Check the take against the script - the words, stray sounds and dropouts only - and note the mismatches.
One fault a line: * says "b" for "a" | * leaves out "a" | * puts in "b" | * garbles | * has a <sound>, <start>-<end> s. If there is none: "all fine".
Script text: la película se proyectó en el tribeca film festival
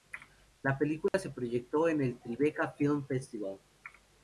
* has a dropout, 1.1-1.1 s